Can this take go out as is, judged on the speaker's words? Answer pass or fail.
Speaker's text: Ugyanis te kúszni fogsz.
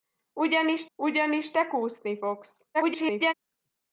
fail